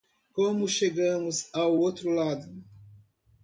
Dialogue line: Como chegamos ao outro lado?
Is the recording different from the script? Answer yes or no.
no